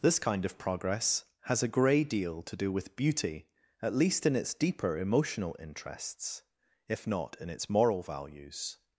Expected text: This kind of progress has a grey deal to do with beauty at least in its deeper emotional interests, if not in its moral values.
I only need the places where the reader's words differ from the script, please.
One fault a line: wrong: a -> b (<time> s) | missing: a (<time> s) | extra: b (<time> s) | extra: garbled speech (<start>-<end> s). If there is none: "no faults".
no faults